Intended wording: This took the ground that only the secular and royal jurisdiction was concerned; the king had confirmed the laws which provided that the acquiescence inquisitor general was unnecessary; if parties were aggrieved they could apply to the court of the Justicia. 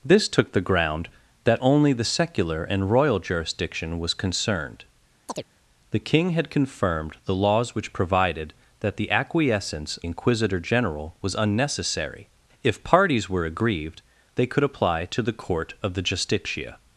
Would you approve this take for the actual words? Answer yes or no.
yes